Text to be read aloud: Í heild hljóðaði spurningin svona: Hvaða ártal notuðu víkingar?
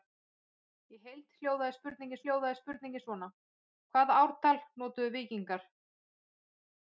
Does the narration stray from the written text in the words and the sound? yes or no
yes